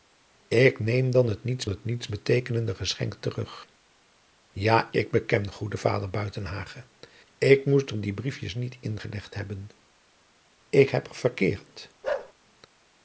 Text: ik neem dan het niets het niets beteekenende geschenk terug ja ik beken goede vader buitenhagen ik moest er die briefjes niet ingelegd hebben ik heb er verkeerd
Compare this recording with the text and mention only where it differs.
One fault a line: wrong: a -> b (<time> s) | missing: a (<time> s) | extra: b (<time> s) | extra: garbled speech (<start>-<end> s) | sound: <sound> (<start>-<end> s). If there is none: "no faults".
sound: bark (12.0-12.3 s)